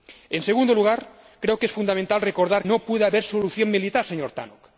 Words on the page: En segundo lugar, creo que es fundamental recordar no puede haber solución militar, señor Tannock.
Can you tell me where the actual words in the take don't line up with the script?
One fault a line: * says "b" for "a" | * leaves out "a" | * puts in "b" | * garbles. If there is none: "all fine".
all fine